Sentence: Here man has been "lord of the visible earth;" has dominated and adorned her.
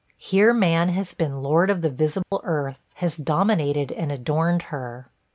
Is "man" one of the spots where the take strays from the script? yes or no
no